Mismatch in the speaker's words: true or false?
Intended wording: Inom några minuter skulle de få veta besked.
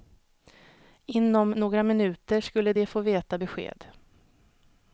false